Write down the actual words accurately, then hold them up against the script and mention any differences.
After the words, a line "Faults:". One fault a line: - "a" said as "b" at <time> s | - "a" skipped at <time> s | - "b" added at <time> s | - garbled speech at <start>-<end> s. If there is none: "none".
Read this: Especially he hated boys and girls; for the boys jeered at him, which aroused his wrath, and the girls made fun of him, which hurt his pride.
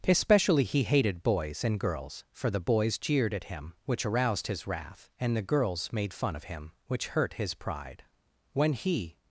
Especially he hated boys and girls; for the boys jeered at him, which aroused his wrath, and the girls made fun of him, which hurt his pride. When he
Faults:
- "When he" added at 8.5 s